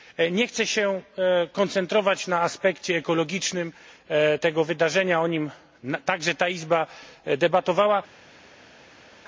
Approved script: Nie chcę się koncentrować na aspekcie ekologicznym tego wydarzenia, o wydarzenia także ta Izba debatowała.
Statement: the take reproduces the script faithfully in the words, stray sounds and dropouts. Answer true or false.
false